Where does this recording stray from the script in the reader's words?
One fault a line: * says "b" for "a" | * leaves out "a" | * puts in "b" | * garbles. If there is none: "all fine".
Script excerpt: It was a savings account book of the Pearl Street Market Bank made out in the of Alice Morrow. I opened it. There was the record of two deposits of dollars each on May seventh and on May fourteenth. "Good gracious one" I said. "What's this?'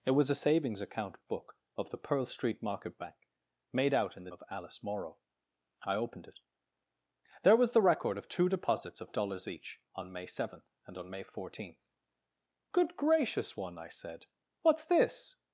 all fine